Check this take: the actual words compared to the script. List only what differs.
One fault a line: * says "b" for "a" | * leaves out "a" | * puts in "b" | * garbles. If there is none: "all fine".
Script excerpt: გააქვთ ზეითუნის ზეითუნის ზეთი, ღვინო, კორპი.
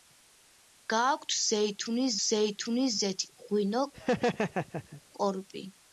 all fine